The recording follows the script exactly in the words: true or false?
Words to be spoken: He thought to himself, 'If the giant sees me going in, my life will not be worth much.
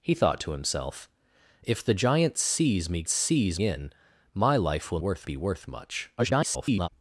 false